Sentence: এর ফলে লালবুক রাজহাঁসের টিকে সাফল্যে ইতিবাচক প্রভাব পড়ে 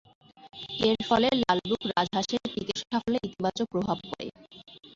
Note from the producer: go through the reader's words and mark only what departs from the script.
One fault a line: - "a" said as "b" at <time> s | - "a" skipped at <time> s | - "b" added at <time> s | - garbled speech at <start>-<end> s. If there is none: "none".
none